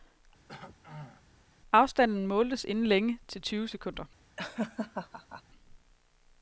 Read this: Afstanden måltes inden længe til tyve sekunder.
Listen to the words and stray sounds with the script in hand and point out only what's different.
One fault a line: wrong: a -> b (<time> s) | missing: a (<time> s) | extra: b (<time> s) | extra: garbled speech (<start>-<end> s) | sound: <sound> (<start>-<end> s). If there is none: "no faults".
sound: throat clearing (0.5-1.2 s)
sound: laugh (4.4-5.4 s)